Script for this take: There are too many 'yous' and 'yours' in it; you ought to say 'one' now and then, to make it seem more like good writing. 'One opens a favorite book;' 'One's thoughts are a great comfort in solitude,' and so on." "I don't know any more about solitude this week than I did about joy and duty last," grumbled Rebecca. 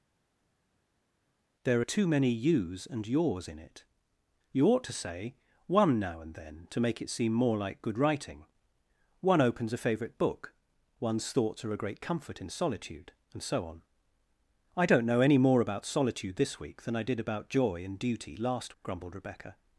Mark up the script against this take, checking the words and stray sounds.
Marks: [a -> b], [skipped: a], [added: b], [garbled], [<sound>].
There are too many 'yous' and 'yours' in it; you ought to say 'one' now and then, to make it seem more like good writing. 'One opens a favorite book;' 'One's thoughts are a great comfort in solitude,' and so on." "I don't know any more about solitude this week than I did about joy and duty last," grumbled Rebecca.